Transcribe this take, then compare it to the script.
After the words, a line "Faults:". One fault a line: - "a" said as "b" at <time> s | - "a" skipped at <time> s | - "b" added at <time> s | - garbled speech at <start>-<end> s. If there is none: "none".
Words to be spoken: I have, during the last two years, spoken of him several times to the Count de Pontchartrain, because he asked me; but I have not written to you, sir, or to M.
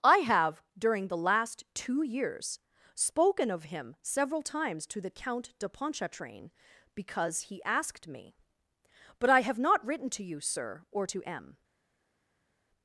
I have, during the last two years, spoken of him several times to the Count de Pontchartrain, because he asked me; but I have not written to you, sir, or to M.
Faults:
none